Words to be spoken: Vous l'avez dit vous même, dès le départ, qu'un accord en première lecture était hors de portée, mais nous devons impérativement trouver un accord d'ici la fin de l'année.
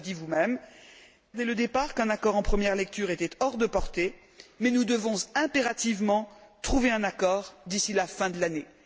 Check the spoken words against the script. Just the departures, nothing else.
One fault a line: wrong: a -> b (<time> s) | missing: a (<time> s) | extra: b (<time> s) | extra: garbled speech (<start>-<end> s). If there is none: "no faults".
no faults